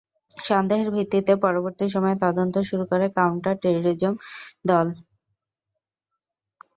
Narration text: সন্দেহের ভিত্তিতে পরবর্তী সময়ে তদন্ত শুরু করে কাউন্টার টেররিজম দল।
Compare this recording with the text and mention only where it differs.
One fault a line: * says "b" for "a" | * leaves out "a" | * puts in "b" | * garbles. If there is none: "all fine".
all fine